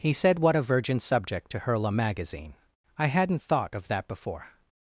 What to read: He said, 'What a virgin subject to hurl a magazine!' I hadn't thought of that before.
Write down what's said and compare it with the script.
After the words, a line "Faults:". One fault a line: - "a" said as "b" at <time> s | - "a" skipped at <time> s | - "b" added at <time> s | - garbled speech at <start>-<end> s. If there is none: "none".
He said, 'What a virgin subject to hurl a magazine!' I hadn't thought of that before.
Faults:
none